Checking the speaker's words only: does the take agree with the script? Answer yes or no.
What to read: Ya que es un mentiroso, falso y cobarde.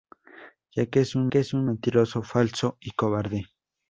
no